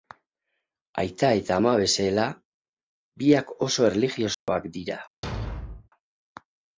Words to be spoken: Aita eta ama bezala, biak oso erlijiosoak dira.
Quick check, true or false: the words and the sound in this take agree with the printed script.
false